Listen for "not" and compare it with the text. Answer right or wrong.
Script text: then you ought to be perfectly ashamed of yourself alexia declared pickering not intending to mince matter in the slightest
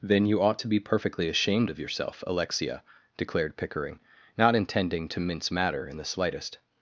right